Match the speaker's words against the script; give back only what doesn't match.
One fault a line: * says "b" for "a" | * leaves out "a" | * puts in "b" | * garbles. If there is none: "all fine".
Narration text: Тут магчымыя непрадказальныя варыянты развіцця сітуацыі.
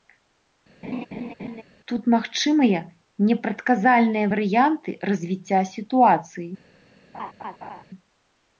all fine